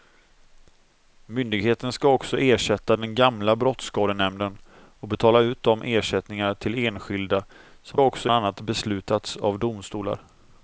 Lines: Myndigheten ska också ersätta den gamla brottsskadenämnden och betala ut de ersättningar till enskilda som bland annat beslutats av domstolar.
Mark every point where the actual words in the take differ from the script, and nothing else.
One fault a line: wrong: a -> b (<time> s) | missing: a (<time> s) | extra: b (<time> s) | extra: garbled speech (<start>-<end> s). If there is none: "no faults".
wrong: bland -> också (8.0 s)